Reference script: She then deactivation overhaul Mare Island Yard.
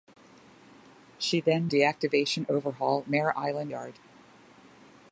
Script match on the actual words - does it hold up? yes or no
yes